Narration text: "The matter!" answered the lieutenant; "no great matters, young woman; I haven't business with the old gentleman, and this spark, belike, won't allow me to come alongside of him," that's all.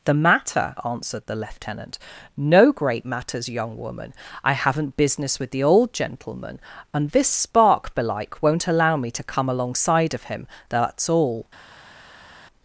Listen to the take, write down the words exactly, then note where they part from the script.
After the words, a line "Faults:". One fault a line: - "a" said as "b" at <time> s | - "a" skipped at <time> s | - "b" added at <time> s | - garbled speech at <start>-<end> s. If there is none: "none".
"The matter!" answered the lieutenant; "no great matters, young woman; I haven't business with the old gentleman, and this spark, belike, won't allow me to come alongside of him," that's all.
Faults:
none